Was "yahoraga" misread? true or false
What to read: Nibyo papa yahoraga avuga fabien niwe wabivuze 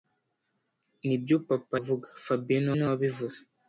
true